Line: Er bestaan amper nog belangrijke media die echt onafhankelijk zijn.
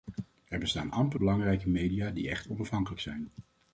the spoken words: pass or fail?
fail